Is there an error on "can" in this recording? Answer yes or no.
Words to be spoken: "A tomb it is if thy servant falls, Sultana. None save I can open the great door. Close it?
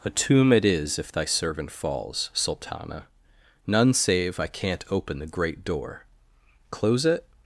yes